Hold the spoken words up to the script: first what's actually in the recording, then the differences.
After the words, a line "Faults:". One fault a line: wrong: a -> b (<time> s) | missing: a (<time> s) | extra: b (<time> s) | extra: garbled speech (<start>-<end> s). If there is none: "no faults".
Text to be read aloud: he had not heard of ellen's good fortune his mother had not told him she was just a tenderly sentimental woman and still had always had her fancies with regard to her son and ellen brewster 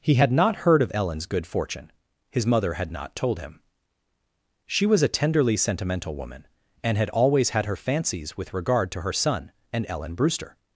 he had not heard of ellen's good fortune his mother had not told him she was a tenderly sentimental woman and had always had her fancies with regard to her son and ellen brewster
Faults:
missing: just (5.0 s)
missing: still (7.0 s)